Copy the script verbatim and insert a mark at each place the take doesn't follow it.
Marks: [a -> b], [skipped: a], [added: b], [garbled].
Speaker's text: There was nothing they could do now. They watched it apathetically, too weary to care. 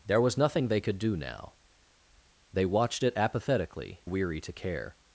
There was nothing they could do now. They watched it apathetically, [skipped: too] weary to care.